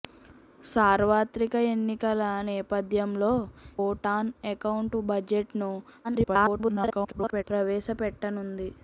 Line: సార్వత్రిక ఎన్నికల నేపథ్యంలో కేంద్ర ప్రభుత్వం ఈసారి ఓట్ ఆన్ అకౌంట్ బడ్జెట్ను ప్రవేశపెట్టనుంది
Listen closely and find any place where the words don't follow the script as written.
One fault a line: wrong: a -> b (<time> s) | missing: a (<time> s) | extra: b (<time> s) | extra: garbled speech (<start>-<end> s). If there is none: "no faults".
missing: కేంద్ర ప్రభుత్వం ఈసారి (3.3 s)
extra: garbled speech (6.0-7.4 s)